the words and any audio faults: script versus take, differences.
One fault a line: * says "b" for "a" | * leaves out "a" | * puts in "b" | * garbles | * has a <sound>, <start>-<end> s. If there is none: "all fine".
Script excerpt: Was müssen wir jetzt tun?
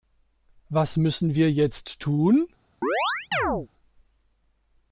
* has a chirp, 2.8-3.7 s